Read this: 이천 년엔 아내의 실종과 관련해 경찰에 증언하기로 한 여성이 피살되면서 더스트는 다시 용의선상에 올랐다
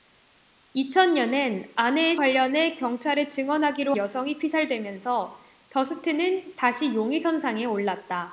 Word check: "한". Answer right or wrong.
wrong